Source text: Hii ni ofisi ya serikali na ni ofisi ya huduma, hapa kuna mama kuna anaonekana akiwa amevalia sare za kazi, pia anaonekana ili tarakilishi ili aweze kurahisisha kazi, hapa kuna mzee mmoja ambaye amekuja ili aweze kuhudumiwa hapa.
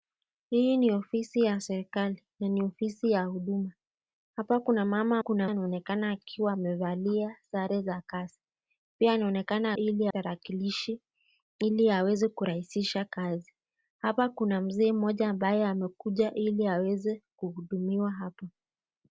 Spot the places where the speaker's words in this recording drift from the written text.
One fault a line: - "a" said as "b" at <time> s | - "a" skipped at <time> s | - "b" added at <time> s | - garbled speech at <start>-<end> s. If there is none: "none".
none